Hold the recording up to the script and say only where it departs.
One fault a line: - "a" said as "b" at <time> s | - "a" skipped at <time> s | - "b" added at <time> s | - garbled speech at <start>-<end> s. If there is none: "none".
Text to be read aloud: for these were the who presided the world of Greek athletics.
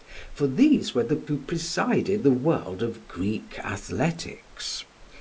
none